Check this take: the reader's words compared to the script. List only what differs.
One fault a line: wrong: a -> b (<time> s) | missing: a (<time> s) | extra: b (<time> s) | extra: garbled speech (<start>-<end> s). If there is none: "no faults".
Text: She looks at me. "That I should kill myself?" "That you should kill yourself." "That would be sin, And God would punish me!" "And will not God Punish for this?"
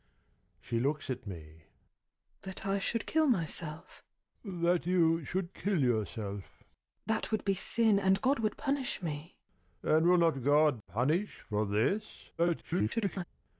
extra: garbled speech (12.4-13.2 s)